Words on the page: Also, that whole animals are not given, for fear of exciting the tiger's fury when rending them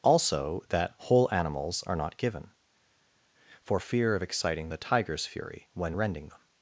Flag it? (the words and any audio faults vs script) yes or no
no